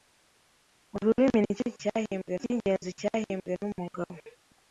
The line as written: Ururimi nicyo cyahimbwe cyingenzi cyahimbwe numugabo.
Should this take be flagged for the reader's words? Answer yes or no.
no